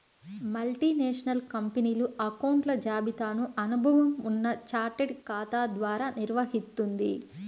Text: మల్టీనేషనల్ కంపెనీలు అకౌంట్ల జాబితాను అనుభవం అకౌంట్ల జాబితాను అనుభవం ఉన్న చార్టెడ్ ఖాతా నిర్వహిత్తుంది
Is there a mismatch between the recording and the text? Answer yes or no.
yes